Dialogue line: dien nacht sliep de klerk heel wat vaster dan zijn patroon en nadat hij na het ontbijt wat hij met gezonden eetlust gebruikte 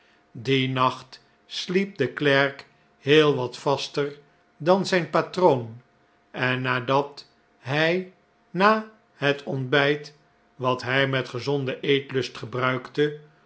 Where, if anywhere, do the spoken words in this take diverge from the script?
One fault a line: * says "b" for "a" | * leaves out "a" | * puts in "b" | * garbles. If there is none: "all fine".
all fine